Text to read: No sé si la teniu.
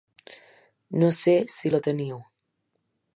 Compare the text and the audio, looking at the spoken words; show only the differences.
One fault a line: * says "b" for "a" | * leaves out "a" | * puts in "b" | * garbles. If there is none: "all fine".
all fine